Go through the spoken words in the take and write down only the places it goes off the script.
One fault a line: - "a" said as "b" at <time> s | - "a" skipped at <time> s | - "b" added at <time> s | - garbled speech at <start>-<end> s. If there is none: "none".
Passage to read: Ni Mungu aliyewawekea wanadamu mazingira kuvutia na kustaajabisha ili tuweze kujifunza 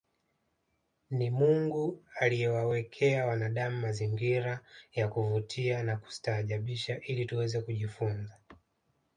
- "ya" added at 4.9 s